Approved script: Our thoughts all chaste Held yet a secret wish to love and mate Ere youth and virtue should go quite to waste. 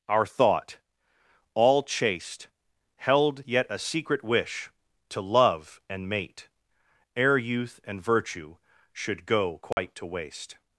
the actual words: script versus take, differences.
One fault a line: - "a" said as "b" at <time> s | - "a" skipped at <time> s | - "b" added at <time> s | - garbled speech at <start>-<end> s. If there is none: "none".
- "thoughts" said as "thought" at 0.2 s